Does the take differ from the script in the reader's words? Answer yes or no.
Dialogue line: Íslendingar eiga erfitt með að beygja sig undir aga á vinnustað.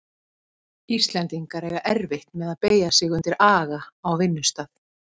no